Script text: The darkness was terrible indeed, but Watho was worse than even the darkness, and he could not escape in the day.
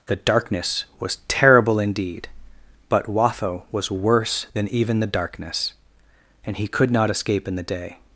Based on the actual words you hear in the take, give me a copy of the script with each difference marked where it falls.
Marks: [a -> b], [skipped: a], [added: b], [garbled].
The darkness was terrible indeed, but Watho was worse than even the darkness, and he could not escape in the day.